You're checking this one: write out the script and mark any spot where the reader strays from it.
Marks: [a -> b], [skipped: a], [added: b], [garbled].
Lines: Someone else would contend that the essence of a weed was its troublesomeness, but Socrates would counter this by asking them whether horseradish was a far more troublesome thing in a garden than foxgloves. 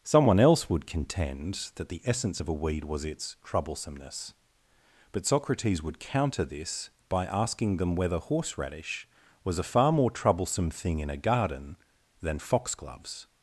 Someone else would contend that the essence of a weed was its troublesomeness, but Socrates would counter this by asking them whether horseradish was a far more troublesome thing in a garden than foxgloves.